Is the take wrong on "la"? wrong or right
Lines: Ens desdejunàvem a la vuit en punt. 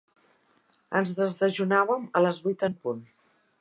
wrong